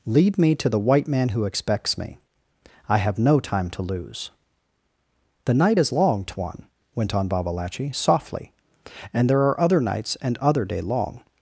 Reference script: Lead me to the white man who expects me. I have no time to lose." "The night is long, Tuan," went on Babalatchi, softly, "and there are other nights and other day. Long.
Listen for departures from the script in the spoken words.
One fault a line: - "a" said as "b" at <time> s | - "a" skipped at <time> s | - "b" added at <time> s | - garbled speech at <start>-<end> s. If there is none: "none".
none